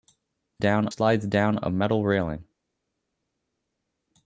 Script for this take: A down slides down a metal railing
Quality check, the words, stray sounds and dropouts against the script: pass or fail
pass